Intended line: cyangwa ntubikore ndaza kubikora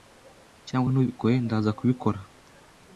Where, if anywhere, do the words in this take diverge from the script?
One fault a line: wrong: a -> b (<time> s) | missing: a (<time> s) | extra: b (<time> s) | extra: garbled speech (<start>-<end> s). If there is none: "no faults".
no faults